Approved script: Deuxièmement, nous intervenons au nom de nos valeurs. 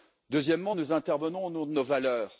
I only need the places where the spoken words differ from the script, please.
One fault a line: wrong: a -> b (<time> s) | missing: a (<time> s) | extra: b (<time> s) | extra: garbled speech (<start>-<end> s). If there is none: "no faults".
no faults